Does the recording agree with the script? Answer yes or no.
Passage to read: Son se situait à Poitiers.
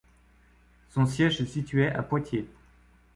no